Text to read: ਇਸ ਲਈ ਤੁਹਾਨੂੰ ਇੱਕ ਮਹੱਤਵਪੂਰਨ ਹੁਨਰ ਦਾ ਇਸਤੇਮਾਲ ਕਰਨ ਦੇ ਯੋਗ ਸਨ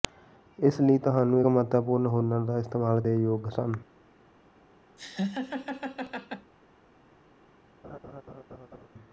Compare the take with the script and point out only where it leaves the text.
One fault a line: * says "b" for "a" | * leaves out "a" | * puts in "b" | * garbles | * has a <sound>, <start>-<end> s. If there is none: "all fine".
* leaves out "ਇੱਕ"
* leaves out "ਕਰਨ"
* has a laugh, 5.0-6.5 s
* has a laugh, 7.8-8.9 s